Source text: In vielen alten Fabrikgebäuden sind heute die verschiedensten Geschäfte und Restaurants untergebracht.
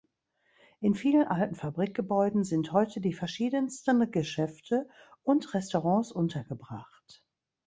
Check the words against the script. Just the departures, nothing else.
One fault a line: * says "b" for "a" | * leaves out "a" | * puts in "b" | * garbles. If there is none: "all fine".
all fine